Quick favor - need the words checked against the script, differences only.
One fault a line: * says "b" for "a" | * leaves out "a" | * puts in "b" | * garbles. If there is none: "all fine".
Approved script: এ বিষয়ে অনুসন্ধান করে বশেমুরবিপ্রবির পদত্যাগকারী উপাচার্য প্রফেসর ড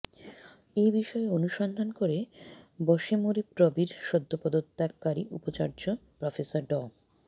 * puts in "সদ্য"